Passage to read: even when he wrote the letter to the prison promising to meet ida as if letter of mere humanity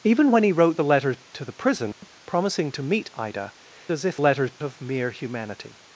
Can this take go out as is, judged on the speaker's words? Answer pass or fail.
pass